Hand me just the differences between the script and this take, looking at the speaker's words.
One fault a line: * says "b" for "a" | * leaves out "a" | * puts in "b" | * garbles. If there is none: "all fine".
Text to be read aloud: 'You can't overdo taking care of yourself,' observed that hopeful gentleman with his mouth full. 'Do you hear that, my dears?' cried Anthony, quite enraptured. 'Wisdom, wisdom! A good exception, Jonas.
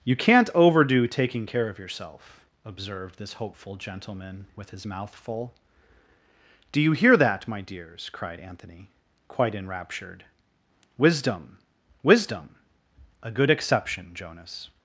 * says "this" for "that"